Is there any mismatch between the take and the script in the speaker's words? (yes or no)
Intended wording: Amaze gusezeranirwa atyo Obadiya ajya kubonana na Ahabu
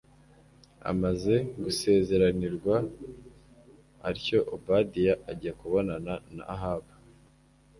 no